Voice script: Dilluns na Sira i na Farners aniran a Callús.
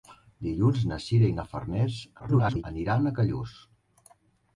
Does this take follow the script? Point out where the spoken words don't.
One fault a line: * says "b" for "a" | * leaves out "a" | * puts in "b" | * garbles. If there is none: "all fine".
* garbles